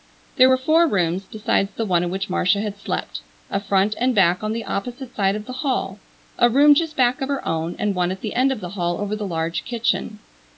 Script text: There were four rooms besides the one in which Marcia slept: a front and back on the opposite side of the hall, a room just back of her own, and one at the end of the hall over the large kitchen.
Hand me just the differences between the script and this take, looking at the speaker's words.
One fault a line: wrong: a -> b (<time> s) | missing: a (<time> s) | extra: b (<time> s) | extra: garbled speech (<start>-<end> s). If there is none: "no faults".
extra: had (2.6 s)